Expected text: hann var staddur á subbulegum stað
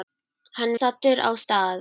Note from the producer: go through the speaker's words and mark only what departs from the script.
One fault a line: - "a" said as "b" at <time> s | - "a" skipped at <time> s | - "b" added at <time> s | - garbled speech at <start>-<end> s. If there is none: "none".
- "var" skipped at 0.7 s
- "subbulegum" skipped at 1.3 s